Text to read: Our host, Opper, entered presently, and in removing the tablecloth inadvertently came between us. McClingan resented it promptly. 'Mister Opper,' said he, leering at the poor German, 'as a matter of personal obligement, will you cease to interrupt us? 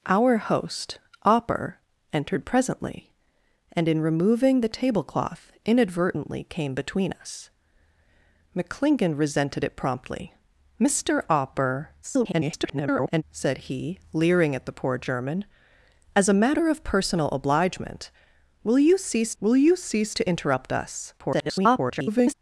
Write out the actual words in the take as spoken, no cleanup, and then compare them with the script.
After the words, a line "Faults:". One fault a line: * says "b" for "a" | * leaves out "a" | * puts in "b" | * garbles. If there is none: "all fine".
Our host, Opper, entered presently, and in removing the tablecloth inadvertently came between us. McClingan resented it promptly. 'Mister Opper,' [garbled] said he, leering at the poor German, 'as a matter of personal obligement, will you cease will you cease to interrupt us? [garbled]
Faults:
* garbles
* puts in "will you cease"
* garbles